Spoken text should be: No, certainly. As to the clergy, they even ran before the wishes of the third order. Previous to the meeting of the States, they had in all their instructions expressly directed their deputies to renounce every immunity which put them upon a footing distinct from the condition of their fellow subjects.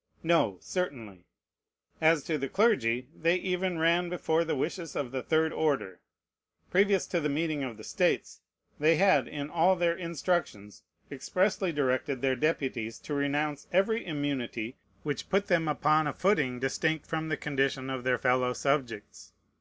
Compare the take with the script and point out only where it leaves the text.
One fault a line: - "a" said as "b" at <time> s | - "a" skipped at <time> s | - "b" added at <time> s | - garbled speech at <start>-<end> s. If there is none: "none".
none